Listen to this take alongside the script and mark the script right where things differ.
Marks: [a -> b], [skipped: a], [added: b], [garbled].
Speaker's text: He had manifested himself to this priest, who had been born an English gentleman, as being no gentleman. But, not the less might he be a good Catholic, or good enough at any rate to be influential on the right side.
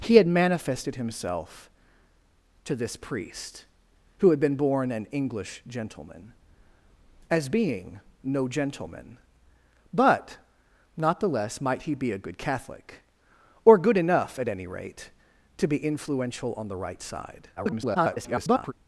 He had manifested himself to this priest, who had been born an English gentleman, as being no gentleman. But, not the less might he be a good Catholic, or good enough at any rate to be influential on the right side. [garbled]